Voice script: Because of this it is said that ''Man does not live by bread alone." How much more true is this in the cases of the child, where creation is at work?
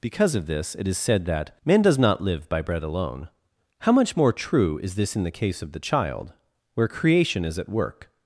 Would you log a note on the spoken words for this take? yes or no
yes